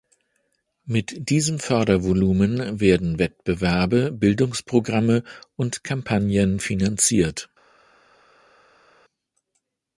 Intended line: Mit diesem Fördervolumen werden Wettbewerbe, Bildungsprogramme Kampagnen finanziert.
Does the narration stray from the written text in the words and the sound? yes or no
yes